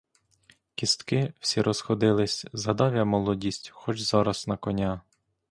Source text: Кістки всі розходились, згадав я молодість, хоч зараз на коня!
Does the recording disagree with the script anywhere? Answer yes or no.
no